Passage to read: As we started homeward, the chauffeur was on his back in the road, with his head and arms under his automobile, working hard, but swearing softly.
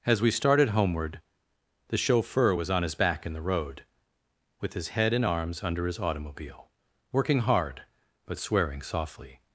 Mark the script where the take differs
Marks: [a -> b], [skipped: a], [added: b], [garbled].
As we started homeward, the chauffeur was on his back in the road, with his head and arms under his automobile, working hard, but swearing softly.